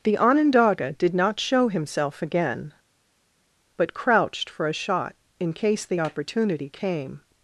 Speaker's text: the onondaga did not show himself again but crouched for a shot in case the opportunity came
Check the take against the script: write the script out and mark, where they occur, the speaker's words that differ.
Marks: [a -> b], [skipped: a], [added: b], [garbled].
the onondaga did not show himself again but crouched for a shot in case the opportunity came